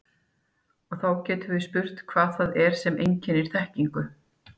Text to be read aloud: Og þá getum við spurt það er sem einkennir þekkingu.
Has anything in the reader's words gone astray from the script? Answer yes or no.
yes